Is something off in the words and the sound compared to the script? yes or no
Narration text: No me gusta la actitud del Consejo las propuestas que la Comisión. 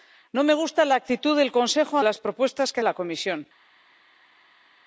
no